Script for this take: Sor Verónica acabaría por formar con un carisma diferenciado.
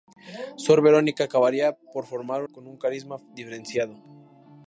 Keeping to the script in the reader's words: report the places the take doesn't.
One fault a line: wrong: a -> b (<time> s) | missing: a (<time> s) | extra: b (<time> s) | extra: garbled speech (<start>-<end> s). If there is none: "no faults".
no faults